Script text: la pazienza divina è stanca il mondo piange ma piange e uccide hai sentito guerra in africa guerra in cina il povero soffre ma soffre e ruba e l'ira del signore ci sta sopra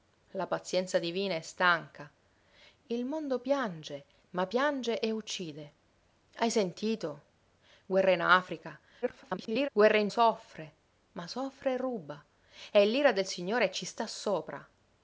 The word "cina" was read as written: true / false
false